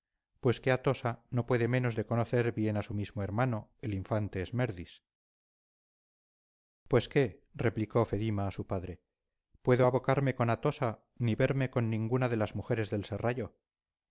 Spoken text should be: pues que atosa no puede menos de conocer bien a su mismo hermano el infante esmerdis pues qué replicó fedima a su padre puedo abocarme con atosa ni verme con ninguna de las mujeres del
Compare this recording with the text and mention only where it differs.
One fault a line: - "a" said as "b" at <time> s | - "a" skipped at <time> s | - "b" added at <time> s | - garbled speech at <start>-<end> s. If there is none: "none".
none